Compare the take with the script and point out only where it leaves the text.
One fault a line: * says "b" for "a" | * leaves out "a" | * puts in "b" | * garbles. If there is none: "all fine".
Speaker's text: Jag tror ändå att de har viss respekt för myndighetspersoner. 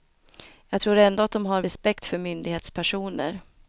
* leaves out "viss"